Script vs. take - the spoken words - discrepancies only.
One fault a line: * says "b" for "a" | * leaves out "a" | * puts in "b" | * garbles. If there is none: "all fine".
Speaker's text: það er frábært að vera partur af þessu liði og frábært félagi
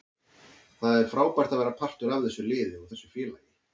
* says "þessu" for "frábært"